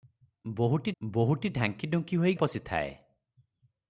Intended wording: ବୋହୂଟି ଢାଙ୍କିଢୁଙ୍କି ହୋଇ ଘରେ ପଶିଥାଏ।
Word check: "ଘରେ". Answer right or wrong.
wrong